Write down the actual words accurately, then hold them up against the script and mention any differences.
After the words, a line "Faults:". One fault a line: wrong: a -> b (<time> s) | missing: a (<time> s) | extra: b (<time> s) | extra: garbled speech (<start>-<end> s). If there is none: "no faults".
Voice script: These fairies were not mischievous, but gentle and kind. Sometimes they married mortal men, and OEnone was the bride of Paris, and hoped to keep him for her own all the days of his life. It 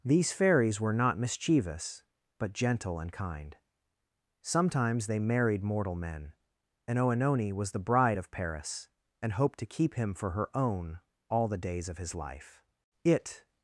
These fairies were not mischievous, but gentle and kind. Sometimes they married mortal men, and OEnone was the bride of Paris, and hoped to keep him for her own all the days of his life. It
Faults:
no faults